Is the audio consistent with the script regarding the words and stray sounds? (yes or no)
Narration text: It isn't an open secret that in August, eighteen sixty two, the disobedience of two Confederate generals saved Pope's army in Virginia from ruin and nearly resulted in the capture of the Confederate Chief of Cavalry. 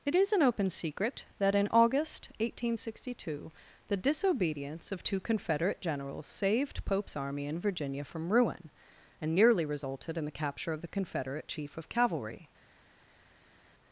no